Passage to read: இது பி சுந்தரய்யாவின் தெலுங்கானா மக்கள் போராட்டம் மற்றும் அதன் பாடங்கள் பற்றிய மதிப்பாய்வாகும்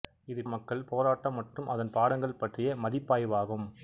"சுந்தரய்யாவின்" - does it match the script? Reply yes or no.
no